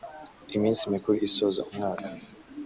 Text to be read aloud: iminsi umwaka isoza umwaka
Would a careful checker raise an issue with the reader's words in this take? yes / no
yes